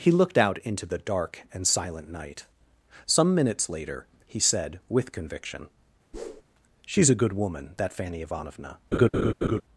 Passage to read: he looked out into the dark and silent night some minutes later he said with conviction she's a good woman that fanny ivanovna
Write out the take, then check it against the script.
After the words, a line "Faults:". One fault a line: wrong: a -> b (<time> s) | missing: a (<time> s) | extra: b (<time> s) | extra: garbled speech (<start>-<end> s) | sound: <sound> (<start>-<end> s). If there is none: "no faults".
he looked out into the dark and silent night some minutes later he said with conviction she's a good woman that fanny ivanovna
Faults:
sound: whoosh (6.1-6.4 s)
sound: laugh (8.9-9.6 s)